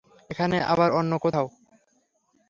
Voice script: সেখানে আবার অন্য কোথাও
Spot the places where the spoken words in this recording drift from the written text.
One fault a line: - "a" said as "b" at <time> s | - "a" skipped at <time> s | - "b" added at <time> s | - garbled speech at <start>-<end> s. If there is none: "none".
- "সেখানে" said as "এখানে" at 0.3 s